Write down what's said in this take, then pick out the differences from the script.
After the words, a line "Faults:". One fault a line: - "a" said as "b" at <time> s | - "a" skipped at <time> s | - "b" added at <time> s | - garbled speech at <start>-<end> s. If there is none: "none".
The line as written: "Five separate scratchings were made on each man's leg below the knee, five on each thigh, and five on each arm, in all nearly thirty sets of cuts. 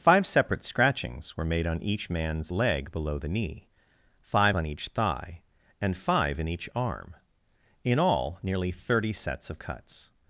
"Five separate scratchings were made on each man's leg below the knee, five on each thigh, and five in each arm, in all nearly thirty sets of cuts.
Faults:
- "on" said as "in" at 6.4 s